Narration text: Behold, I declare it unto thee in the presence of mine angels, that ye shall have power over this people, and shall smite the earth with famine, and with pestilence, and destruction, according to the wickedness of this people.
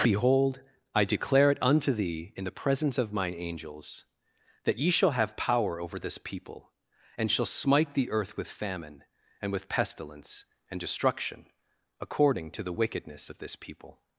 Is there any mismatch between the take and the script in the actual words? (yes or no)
no